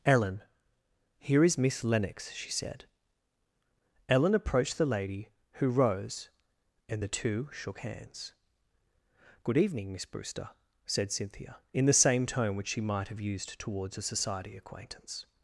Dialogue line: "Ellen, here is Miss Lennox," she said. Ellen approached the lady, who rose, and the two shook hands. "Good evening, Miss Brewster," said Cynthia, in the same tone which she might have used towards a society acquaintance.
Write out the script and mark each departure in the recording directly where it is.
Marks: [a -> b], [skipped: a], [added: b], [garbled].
"Ellen, here is Miss Lennox," she said. Ellen approached the lady, who rose, and the two shook hands. "Good evening, Miss Brewster," said Cynthia, in the same tone which she might have used towards a society acquaintance.